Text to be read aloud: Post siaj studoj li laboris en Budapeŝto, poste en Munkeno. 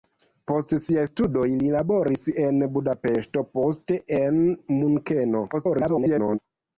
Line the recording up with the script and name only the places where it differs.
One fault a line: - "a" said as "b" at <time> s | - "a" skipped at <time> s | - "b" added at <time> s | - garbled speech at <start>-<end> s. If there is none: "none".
- garbled speech at 5.5-6.4 s